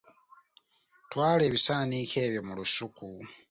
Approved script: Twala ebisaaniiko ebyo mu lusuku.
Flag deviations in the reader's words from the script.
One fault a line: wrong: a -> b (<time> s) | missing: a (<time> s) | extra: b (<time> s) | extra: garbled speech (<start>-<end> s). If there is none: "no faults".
no faults